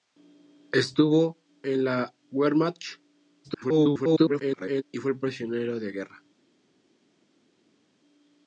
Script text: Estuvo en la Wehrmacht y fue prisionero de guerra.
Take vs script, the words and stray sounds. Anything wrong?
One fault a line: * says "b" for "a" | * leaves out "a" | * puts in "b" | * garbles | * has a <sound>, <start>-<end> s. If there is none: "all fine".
* garbles